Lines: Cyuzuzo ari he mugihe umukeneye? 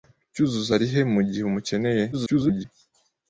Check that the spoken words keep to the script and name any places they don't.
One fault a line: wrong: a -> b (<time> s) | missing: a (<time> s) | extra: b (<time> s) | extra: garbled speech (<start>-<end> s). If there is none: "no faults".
extra: garbled speech (2.1-2.7 s)